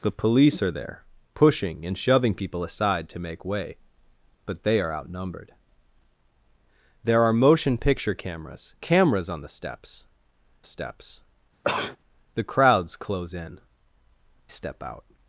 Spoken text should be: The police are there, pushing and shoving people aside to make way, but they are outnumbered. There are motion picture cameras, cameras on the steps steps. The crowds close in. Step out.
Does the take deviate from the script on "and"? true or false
false